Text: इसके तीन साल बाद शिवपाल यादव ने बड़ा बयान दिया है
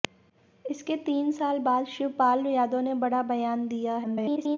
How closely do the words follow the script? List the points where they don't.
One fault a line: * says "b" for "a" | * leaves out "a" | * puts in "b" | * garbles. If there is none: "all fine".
* garbles